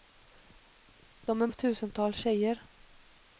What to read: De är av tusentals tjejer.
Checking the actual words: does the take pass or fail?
pass